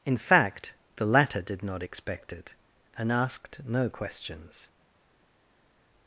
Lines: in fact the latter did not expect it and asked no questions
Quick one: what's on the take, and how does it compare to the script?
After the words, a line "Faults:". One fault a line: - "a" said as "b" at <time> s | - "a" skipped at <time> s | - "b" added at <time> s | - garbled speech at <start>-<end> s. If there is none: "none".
in fact the latter did not expect it and asked no questions
Faults:
none